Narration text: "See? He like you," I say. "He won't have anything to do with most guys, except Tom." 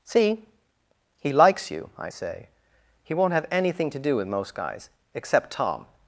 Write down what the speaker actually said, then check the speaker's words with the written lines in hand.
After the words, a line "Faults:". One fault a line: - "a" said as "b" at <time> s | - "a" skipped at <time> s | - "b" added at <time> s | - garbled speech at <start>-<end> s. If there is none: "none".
"See? He likes you," I say. "He won't have anything to do with most guys, except Tom."
Faults:
- "like" said as "likes" at 1.3 s